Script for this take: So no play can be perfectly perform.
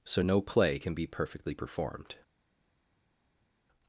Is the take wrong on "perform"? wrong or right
wrong